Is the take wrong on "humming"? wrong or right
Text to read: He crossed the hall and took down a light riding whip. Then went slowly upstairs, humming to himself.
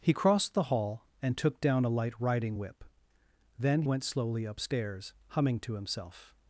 right